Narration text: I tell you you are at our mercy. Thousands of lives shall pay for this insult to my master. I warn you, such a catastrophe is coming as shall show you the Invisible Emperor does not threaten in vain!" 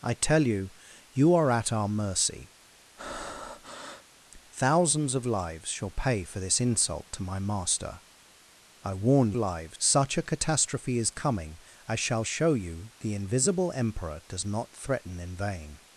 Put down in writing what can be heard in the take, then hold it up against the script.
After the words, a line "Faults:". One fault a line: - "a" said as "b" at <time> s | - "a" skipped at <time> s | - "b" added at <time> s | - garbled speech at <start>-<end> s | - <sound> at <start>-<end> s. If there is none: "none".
I tell you you are at our mercy. Thousands of lives shall pay for this insult to my master. I warn lives, such a catastrophe is coming as shall show you the Invisible Emperor does not threaten in vain!"
Faults:
- breath at 3.0-4.1 s
- "you" said as "lives" at 9.4 s